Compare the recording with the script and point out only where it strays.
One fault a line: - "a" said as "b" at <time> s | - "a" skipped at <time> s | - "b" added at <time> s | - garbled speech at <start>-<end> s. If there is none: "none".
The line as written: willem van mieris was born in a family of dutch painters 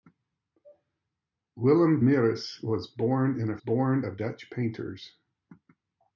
- "van" skipped at 2.0 s
- "family" said as "born" at 3.6 s